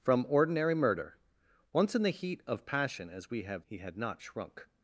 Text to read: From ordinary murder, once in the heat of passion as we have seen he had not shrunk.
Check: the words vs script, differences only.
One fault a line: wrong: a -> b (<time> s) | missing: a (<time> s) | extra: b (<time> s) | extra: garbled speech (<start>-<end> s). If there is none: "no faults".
missing: seen (3.7 s)